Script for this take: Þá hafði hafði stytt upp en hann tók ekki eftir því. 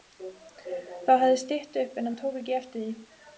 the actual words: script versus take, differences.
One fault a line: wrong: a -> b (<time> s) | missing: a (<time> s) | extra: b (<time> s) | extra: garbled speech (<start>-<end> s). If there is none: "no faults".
missing: hafði (1.4 s)